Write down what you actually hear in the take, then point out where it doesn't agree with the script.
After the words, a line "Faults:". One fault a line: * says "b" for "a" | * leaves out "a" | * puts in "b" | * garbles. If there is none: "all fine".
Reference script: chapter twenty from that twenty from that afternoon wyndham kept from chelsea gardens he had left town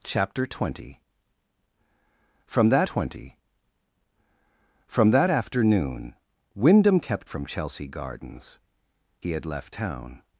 chapter twenty from that twenty from that afternoon wyndham kept from chelsea gardens he had left town
Faults:
all fine